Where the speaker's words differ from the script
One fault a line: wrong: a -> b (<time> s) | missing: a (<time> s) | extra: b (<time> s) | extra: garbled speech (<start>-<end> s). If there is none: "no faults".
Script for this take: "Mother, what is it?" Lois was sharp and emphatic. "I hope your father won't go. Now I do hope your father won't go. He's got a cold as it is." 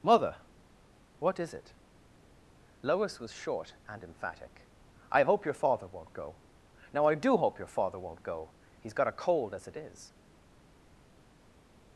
wrong: sharp -> short (3.3 s)